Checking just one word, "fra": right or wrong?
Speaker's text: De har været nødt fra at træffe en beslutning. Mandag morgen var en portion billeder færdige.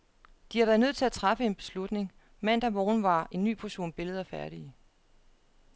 wrong